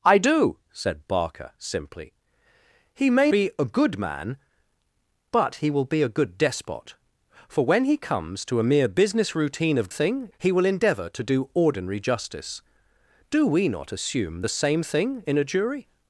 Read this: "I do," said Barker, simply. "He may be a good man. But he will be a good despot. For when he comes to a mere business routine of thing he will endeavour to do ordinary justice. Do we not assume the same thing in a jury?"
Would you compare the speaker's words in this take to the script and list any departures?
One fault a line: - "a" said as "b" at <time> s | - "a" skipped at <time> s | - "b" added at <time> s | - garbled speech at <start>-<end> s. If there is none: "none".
none